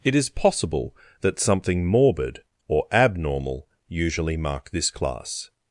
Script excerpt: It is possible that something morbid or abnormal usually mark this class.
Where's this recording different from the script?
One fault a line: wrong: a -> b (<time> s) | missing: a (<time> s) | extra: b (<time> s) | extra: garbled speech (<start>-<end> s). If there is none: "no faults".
no faults